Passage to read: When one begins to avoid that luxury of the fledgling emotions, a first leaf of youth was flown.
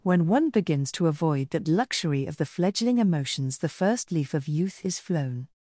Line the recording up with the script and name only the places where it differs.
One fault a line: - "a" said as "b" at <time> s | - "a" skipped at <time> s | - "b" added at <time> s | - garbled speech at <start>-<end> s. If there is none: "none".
- "a" said as "the" at 3.6 s
- "was" said as "is" at 4.9 s